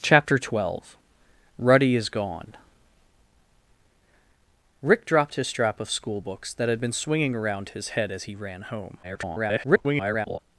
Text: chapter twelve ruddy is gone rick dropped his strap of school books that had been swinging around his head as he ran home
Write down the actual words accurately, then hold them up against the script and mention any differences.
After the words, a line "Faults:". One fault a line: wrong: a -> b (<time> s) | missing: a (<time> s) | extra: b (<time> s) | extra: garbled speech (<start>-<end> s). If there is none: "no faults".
chapter twelve ruddy is gone rick dropped his strap of school books that had been swinging around his head as he ran home [garbled]
Faults:
extra: garbled speech (9.0-10.4 s)